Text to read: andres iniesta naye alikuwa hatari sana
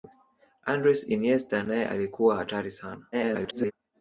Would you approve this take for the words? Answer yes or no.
no